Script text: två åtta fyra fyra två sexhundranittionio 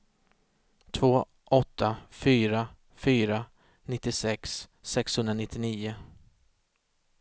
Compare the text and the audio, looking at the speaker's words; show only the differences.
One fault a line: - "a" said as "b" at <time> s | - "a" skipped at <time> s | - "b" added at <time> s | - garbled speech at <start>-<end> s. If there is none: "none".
- "två" said as "nittiosex" at 3.8 s